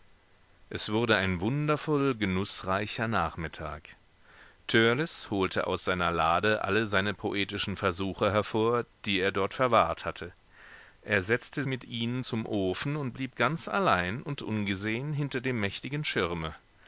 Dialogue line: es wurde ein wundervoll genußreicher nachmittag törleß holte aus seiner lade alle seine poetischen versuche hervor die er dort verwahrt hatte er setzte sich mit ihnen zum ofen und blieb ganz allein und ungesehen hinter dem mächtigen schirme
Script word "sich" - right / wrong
wrong